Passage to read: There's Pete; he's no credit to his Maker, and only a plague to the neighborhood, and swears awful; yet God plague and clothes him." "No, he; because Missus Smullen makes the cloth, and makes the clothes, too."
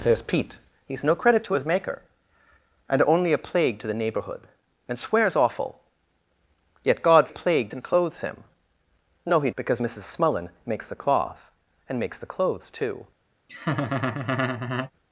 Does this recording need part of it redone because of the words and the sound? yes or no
yes